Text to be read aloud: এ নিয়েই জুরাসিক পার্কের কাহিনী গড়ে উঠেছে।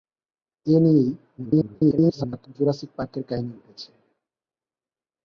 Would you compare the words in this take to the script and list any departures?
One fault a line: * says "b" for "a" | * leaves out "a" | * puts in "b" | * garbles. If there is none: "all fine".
* garbles
* leaves out "গড়ে"